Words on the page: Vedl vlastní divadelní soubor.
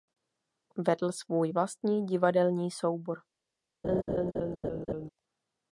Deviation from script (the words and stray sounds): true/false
true